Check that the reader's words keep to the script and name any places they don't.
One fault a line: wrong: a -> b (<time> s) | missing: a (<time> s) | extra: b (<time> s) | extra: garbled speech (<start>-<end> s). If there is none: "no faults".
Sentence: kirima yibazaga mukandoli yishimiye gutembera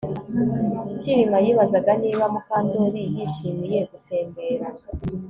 extra: niba (2.0 s)